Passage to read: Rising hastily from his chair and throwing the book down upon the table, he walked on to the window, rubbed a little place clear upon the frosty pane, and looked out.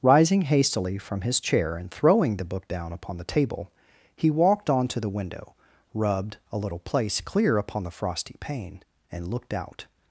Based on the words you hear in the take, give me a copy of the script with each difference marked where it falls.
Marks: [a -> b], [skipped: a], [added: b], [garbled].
Rising hastily from his chair and throwing the book down upon the table, he walked on to the window, rubbed a little place clear upon the frosty pane, and looked out.